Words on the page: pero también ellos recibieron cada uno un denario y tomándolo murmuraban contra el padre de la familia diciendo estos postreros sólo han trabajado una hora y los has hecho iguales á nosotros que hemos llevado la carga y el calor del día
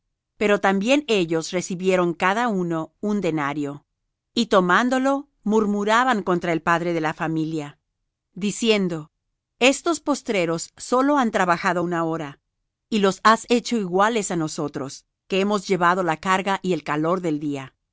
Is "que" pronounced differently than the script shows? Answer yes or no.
no